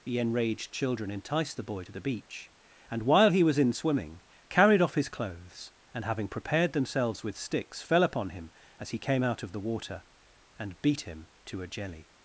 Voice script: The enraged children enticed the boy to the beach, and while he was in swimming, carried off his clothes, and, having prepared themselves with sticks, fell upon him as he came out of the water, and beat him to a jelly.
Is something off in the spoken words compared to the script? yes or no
no